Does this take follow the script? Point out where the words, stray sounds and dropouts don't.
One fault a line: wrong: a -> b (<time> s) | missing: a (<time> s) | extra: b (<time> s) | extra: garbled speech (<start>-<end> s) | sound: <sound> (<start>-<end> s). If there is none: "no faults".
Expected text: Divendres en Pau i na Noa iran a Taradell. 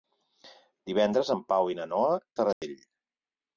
missing: iran (2.1 s)
sound: dropout (2.5-2.6 s)